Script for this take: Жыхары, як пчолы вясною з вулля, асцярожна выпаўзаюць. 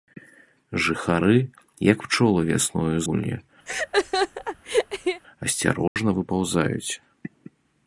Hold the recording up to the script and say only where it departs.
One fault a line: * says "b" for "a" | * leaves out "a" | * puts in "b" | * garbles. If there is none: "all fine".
* leaves out "з"